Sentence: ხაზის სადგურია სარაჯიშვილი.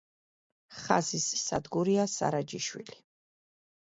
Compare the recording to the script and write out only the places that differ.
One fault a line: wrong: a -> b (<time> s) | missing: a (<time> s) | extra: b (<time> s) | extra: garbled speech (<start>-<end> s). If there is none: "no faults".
no faults